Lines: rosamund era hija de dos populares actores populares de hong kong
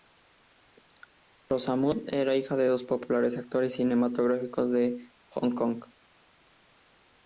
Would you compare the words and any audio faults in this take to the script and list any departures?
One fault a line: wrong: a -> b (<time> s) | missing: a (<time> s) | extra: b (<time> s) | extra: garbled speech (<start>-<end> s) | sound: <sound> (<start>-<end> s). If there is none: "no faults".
wrong: populares -> cinematográficos (3.7 s)